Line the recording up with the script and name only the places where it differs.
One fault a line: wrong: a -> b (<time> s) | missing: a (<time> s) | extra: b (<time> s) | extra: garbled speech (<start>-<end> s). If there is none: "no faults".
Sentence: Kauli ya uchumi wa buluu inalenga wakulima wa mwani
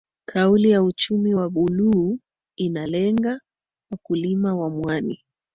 no faults